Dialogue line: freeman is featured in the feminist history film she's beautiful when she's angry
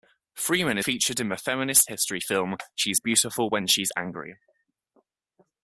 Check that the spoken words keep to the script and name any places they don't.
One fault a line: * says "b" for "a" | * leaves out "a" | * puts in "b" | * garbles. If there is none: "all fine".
* leaves out "is"